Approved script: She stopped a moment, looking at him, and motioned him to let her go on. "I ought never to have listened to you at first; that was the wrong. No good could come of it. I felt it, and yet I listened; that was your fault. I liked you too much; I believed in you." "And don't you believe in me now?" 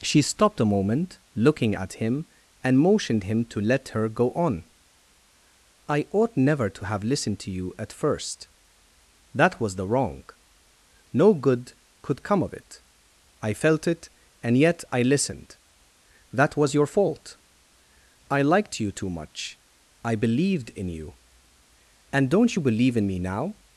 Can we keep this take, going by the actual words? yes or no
yes